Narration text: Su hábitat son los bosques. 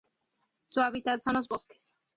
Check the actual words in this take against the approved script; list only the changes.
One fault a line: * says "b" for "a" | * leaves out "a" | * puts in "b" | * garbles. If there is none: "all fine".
all fine